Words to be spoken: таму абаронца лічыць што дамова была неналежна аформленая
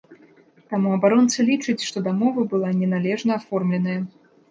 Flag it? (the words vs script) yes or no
no